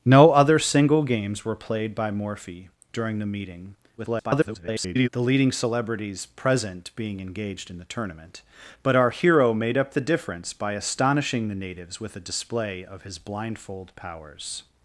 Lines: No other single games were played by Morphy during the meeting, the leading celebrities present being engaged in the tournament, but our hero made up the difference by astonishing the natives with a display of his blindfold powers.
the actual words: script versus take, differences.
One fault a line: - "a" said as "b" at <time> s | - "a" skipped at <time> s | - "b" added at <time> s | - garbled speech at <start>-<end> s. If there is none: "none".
- garbled speech at 4.0-5.1 s